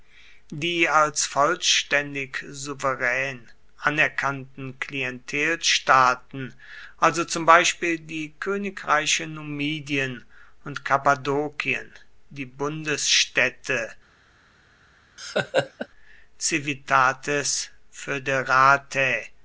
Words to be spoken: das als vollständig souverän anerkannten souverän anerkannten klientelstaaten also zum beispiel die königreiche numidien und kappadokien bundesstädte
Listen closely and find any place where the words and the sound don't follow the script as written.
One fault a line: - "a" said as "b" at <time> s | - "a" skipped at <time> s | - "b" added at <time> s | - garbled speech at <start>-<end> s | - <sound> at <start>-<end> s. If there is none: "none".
- "das" said as "die" at 0.5 s
- "souverän anerkannten" skipped at 4.8 s
- "die" added at 12.3 s
- laugh at 15.2-15.9 s